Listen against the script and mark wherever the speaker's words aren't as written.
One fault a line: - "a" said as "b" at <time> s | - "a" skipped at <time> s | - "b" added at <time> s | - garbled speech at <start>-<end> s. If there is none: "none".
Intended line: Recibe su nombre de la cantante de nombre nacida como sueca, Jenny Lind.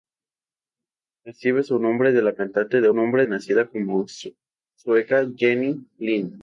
none